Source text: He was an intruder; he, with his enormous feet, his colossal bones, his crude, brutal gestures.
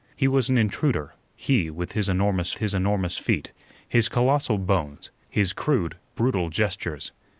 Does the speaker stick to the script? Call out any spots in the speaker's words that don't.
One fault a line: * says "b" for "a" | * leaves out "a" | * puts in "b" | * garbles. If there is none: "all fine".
* puts in "his enormous"